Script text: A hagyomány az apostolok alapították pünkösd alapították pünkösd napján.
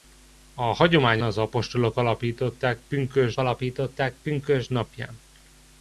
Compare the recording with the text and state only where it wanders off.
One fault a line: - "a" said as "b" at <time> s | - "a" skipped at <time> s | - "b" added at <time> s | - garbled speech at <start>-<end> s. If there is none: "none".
none